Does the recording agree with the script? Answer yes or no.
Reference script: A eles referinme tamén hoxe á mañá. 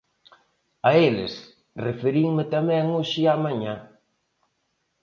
yes